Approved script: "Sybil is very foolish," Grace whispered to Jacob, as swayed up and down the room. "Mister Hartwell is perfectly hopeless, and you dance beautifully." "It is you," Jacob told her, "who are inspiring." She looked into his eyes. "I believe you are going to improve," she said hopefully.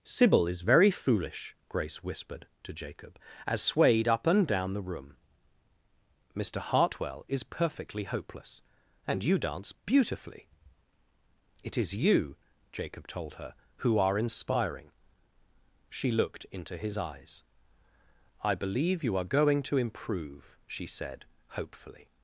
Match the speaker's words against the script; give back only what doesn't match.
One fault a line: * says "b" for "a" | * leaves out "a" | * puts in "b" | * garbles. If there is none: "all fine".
all fine